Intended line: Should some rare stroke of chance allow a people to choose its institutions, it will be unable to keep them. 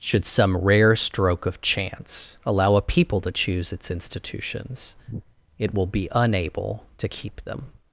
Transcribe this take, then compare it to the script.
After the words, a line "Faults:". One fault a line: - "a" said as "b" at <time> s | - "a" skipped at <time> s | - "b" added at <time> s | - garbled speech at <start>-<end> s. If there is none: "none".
Should some rare stroke of chance allow a people to choose its institutions, it will be unable to keep them.
Faults:
none